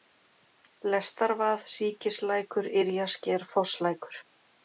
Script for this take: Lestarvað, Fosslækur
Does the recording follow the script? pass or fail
fail